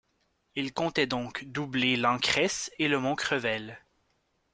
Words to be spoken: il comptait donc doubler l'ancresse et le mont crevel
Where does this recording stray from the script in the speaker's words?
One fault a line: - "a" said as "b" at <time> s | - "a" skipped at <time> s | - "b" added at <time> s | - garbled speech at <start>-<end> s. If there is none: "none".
none